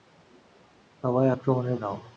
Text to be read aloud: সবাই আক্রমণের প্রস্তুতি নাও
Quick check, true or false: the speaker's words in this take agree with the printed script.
false